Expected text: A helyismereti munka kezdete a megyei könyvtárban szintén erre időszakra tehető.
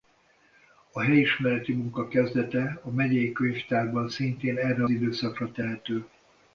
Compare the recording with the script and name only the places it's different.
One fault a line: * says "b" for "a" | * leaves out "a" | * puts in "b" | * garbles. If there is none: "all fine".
all fine